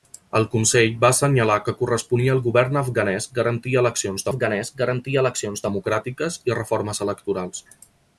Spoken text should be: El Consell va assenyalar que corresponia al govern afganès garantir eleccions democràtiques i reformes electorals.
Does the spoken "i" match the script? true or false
true